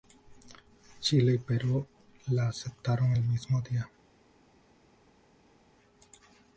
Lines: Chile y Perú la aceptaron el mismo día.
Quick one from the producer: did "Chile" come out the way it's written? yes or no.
yes